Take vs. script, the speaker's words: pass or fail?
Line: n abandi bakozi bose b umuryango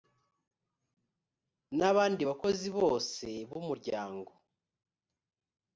pass